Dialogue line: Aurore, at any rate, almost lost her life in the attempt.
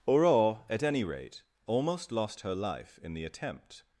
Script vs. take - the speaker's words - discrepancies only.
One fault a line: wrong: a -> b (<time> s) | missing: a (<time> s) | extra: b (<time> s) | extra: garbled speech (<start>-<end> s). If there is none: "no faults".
no faults